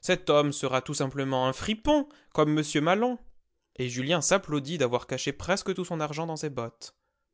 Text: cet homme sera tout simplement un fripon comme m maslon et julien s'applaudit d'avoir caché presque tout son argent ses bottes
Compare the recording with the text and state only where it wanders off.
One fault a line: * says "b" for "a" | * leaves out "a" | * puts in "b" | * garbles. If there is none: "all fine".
* puts in "dans"